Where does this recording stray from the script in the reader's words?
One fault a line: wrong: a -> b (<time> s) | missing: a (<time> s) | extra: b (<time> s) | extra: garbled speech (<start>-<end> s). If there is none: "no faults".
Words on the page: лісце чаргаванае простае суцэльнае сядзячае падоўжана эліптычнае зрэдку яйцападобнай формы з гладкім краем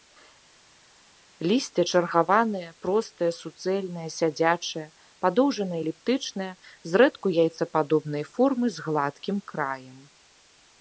no faults